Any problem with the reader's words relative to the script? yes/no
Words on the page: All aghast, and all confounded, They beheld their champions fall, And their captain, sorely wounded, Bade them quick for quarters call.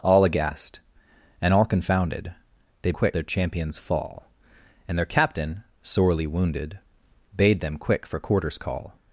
yes